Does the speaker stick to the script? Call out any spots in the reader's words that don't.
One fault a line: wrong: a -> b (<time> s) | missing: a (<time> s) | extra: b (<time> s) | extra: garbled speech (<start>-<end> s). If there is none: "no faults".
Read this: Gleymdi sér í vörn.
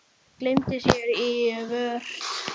no faults